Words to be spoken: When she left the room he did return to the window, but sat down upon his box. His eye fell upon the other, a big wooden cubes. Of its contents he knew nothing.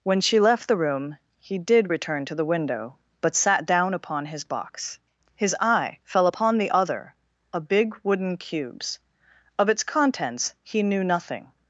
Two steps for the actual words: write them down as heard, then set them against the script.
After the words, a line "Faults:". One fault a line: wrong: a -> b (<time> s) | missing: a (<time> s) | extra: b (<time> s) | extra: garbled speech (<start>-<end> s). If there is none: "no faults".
When she left the room he did return to the window, but sat down upon his box. His eye fell upon the other, a big wooden cubes. Of its contents he knew nothing.
Faults:
no faults